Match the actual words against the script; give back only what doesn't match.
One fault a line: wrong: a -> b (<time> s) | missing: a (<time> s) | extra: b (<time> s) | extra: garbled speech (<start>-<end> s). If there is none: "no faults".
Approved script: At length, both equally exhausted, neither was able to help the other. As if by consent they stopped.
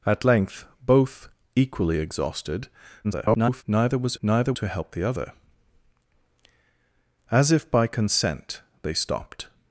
extra: garbled speech (3.0-3.6 s)
wrong: able -> neither (4.2 s)